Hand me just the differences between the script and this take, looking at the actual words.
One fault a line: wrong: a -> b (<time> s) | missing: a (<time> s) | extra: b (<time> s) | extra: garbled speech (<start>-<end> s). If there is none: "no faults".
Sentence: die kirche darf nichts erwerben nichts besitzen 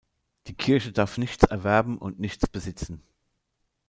extra: und (2.0 s)